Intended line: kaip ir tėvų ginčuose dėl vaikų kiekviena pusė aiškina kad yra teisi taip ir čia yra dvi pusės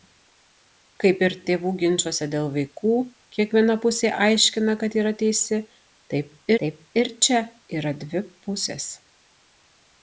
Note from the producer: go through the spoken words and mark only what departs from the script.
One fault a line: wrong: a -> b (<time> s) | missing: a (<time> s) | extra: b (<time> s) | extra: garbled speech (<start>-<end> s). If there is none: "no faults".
extra: taip (6.6 s)